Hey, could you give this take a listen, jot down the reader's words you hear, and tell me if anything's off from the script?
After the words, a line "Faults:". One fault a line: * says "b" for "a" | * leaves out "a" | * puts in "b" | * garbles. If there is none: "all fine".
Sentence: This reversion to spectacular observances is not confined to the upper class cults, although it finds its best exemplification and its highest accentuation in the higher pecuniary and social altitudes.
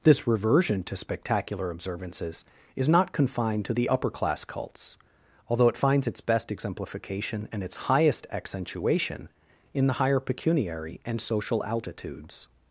This reversion to spectacular observances is not confined to the upper class cults, although it finds its best exemplification and its highest accentuation in the higher pecuniary and social altitudes.
Faults:
all fine